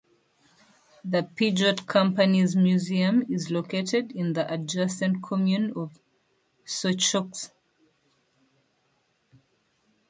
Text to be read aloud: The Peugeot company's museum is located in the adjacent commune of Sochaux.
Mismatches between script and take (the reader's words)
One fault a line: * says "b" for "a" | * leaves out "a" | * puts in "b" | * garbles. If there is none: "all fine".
all fine